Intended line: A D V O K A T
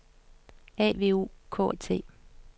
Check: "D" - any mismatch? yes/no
yes